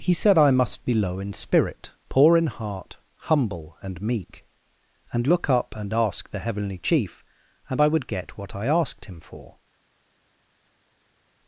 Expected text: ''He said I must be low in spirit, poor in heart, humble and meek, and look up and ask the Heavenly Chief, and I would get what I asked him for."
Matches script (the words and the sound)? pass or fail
pass